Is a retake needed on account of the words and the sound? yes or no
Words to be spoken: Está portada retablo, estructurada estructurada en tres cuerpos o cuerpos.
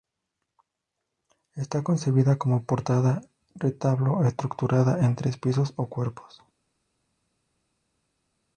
yes